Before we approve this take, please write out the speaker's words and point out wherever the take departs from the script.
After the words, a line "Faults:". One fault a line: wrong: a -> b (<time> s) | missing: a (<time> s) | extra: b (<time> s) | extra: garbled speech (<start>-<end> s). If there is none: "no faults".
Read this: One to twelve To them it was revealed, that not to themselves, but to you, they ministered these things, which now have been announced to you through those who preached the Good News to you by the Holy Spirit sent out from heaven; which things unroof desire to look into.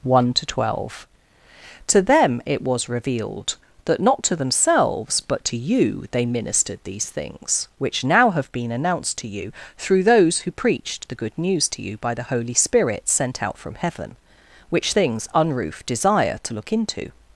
One to twelve To them it was revealed, that not to themselves, but to you, they ministered these things, which now have been announced to you through those who preached the Good News to you by the Holy Spirit sent out from heaven; which things unroof desire to look into.
Faults:
no faults